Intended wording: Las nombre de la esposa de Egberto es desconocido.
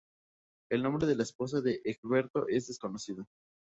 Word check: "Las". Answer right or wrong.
wrong